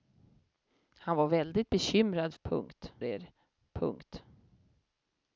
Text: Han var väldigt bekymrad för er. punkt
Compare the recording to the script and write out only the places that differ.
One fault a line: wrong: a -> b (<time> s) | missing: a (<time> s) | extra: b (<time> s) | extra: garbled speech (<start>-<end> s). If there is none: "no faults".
wrong: för -> punkt (2.4 s)